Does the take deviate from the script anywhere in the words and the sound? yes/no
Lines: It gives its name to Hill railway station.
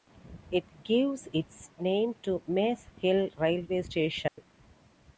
yes